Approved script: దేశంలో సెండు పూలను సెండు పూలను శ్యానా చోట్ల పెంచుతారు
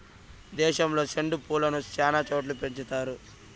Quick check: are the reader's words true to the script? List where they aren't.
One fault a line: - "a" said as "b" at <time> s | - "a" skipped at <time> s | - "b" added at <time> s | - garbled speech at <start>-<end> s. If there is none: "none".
- "సెండు పూలను" skipped at 1.8 s